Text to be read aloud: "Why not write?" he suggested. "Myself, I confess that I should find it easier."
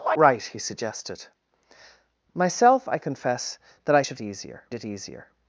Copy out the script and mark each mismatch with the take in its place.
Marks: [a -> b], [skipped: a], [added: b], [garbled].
"Why [skipped: not] write?" he suggested. "Myself, I confess that I should [find -> easier] it easier."